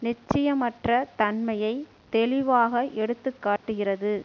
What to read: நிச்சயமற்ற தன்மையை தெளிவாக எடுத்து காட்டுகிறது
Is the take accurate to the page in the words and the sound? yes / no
no